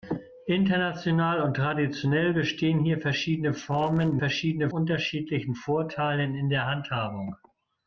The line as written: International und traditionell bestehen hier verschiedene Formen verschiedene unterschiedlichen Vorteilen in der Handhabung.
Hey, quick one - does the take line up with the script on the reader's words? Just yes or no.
yes